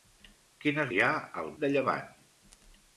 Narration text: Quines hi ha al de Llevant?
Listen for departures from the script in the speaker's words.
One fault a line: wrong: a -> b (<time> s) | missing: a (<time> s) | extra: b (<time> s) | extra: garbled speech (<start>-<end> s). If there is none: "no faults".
no faults